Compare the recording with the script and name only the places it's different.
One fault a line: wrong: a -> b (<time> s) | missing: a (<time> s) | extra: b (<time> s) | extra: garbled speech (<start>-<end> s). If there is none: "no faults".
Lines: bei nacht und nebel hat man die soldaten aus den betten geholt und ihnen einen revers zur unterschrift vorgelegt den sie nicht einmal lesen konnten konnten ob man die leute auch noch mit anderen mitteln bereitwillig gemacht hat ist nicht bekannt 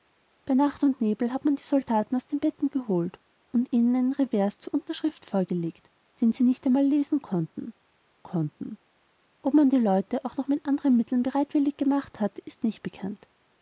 no faults